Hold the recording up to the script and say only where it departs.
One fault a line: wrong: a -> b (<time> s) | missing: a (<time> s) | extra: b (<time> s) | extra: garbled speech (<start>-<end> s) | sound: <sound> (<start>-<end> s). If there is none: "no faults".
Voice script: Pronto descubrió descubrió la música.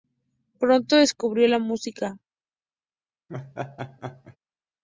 missing: descubrió (1.5 s)
sound: laugh (3.3-4.4 s)